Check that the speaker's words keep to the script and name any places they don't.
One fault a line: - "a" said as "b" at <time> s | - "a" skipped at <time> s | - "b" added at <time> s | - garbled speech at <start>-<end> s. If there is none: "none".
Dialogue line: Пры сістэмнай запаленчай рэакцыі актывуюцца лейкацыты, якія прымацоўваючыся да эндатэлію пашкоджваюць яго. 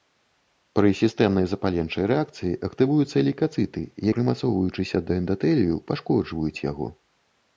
- "якія" skipped at 3.9 s